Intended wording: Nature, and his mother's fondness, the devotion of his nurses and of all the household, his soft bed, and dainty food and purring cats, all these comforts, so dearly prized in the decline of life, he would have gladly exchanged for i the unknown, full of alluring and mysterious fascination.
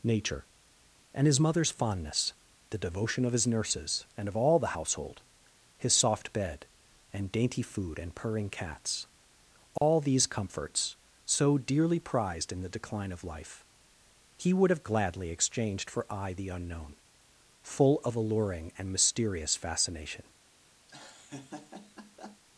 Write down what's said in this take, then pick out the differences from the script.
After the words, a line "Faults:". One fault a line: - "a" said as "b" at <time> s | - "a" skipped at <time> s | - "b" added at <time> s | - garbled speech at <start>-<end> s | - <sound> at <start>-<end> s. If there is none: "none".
Nature, and his mother's fondness, the devotion of his nurses and of all the household, his soft bed, and dainty food and purring cats, all these comforts, so dearly prized in the decline of life, he would have gladly exchanged for i the unknown, full of alluring and mysterious fascination.
Faults:
- dropout at 9.8-9.8 s
- laugh at 20.9-22.4 s